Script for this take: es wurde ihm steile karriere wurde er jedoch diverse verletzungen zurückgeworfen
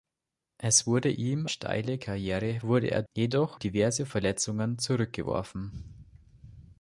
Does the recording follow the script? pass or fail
pass